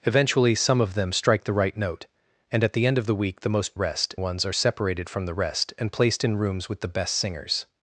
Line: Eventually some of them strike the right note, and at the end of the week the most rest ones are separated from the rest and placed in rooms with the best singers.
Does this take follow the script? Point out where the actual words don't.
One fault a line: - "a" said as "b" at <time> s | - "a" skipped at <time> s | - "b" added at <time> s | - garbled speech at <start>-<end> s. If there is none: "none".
none